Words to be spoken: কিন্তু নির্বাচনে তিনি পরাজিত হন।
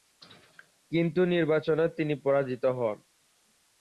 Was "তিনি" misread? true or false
false